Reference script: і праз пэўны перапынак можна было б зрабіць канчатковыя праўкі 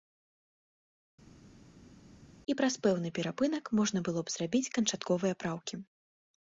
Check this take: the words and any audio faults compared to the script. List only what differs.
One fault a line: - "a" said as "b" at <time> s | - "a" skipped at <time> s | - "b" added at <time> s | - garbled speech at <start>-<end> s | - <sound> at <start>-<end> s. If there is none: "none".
none